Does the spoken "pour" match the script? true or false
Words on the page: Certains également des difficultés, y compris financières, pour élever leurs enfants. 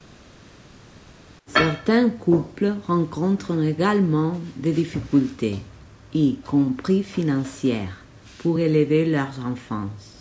true